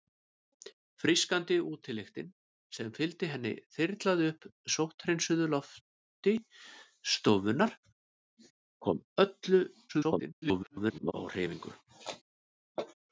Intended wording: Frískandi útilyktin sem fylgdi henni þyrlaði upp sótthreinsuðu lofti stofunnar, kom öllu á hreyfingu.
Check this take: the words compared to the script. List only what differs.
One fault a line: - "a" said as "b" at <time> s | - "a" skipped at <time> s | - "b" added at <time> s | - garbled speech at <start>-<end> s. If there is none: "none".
- garbled speech at 9.9-11.1 s